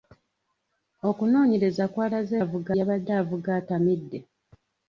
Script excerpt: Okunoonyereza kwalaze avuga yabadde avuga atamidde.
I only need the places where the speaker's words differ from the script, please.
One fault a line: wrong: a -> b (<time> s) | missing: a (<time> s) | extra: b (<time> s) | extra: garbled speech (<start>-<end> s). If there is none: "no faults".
no faults